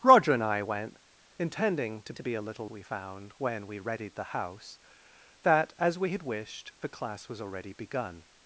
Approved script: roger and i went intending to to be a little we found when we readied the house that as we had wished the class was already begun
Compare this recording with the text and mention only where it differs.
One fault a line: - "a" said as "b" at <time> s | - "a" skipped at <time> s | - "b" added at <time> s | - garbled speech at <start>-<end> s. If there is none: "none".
none